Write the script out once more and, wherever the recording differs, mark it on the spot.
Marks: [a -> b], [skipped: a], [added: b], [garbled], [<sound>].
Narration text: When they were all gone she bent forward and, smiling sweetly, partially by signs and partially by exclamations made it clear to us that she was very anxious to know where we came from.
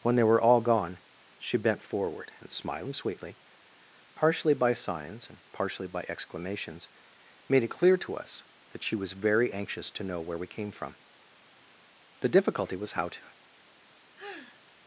When they were all gone she bent forward and, smiling sweetly, partially by signs and partially by exclamations made it clear to us that she was very anxious to know where we came from. [added: The difficulty was how to] [sigh]